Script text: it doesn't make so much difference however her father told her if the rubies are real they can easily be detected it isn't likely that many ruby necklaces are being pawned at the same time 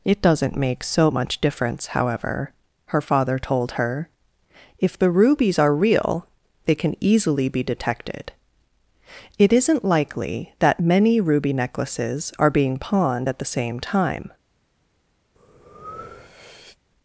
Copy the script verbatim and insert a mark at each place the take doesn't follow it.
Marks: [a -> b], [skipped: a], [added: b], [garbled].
it doesn't make so much difference however her father told her if the rubies are real they can easily be detected it isn't likely that many ruby necklaces are being pawned at the same time